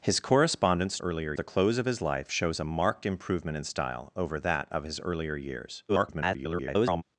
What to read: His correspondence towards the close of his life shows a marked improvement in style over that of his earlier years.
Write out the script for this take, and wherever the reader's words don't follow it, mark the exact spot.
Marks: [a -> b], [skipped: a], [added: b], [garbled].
His correspondence [towards -> earlier] the close of his life shows a marked improvement in style over that of his earlier years. [garbled]